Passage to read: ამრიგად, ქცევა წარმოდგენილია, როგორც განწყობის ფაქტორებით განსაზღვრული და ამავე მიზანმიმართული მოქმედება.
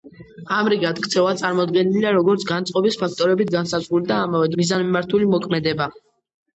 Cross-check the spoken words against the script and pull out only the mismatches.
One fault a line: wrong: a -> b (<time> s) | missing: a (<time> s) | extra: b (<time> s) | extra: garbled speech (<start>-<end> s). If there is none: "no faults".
no faults